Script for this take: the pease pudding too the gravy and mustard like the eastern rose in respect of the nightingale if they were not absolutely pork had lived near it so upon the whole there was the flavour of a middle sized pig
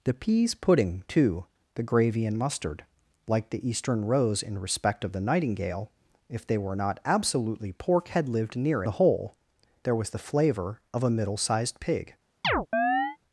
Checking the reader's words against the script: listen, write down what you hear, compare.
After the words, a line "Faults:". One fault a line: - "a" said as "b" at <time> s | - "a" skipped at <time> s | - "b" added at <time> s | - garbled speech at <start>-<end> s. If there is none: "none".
the pease pudding too the gravy and mustard like the eastern rose in respect of the nightingale if they were not absolutely pork had lived near the whole there was the flavour of a middle sized pig
Faults:
- "it so upon" skipped at 8.8 s